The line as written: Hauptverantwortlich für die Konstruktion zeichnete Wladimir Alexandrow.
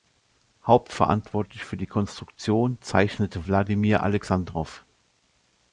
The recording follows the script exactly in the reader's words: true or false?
true